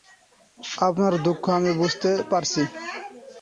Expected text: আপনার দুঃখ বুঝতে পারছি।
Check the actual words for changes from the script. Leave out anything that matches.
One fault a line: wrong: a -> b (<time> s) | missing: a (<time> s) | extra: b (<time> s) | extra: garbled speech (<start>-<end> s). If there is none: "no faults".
extra: আমি (1.5 s)